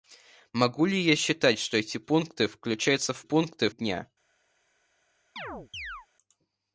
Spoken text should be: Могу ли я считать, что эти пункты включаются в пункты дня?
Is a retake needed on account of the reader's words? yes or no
no